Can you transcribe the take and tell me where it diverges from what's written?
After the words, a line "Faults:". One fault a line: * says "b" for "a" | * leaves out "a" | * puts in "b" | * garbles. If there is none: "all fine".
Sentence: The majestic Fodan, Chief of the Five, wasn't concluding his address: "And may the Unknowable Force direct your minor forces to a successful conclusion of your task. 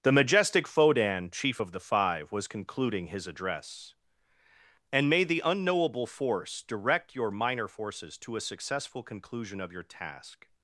The majestic Fodan, Chief of the Five, was concluding his address: "And may the Unknowable Force direct your minor forces to a successful conclusion of your task.
Faults:
* says "was" for "wasn't"